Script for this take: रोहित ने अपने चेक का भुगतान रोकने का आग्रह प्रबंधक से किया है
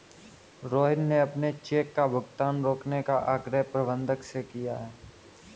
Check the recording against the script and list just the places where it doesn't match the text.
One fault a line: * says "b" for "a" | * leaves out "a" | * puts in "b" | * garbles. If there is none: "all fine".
all fine